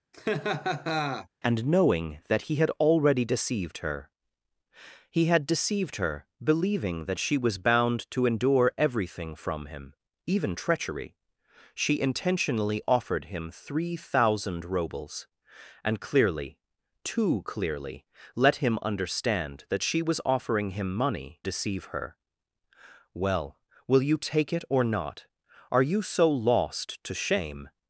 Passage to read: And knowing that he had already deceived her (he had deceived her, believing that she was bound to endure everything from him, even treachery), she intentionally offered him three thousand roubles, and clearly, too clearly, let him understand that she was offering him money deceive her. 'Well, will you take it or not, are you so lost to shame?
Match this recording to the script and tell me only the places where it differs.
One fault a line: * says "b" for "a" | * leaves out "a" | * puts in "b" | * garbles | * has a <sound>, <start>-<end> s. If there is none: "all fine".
* has a laugh, 0.1-1.3 s